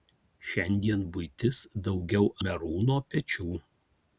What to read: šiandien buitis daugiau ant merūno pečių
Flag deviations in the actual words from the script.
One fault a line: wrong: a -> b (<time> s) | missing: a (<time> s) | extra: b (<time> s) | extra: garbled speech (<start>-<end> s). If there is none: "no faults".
missing: ant (2.3 s)